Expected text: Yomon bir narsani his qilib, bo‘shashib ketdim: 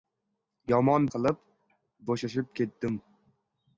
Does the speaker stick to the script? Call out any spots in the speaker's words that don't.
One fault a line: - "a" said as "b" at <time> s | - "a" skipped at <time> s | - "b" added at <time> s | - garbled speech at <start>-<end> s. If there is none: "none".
- "bir narsani his" skipped at 1.0 s